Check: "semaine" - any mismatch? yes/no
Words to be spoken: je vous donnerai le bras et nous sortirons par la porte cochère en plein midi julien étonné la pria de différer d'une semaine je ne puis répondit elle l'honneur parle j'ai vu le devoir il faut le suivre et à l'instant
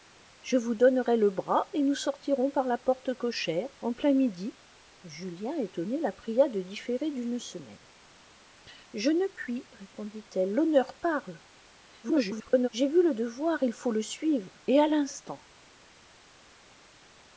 no